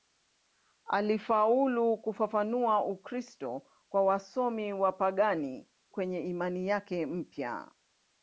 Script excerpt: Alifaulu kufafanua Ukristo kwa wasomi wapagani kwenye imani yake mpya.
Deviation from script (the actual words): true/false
false